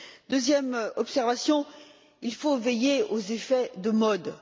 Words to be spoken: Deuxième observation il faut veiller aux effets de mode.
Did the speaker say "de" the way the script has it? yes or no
yes